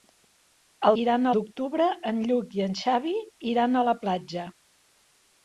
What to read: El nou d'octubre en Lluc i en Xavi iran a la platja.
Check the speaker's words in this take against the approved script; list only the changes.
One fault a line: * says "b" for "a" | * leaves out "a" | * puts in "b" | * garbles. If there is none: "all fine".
* says "iran" for "nou"